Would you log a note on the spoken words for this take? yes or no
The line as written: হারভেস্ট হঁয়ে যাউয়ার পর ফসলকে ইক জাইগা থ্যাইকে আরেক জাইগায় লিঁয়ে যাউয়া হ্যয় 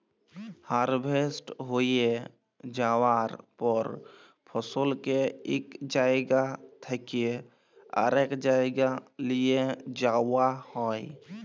no